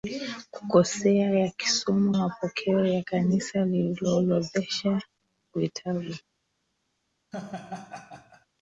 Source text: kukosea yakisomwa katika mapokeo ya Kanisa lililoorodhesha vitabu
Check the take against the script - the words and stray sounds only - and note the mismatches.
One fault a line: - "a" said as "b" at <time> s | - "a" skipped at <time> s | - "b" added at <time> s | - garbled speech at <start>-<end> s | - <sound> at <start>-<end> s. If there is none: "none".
- "katika" skipped at 2.1 s
- laugh at 7.3-8.5 s